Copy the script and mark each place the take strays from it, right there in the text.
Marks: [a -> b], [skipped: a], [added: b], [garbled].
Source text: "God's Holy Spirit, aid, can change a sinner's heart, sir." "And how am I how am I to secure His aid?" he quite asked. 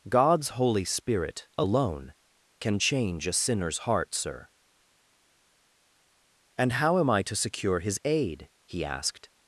"God's Holy Spirit, [aid, -> alone] can change a sinner's heart, sir." "And how am I [skipped: how am I] to secure His aid?" he [skipped: quite] asked.